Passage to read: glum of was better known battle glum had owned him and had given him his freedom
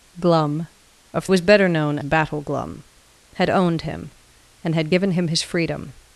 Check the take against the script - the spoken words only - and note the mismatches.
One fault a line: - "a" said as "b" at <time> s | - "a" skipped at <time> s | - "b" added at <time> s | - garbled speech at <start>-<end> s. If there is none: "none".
none